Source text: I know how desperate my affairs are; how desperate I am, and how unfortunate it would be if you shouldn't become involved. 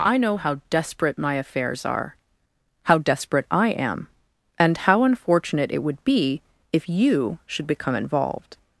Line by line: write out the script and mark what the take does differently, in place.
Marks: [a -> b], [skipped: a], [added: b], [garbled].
I know how desperate my affairs are; how desperate I am, and how unfortunate it would be if you [shouldn't -> should] become involved.